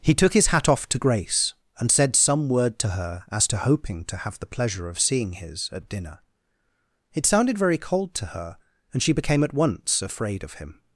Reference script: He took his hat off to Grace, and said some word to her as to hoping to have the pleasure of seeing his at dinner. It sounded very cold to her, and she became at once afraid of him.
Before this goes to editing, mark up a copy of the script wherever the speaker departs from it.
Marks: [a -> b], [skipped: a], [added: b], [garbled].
He took his hat off to Grace, and said some word to her as to hoping to have the pleasure of seeing his at dinner. It sounded very cold to her, and she became at once afraid of him.